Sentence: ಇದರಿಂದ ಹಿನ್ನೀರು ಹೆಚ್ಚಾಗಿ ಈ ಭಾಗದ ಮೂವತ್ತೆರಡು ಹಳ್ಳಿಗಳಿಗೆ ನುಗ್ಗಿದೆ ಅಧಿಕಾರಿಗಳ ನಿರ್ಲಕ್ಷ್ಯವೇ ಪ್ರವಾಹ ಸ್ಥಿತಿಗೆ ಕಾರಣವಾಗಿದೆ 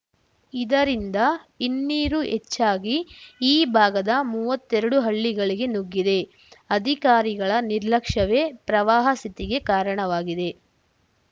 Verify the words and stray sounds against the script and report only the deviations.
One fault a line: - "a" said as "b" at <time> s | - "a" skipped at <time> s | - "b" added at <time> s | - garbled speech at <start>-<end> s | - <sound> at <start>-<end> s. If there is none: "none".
none